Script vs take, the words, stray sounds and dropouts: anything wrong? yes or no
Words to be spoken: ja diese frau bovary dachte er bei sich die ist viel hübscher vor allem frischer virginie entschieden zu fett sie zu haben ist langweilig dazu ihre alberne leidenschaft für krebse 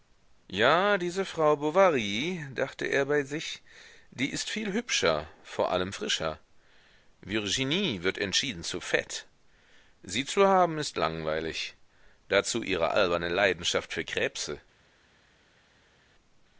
yes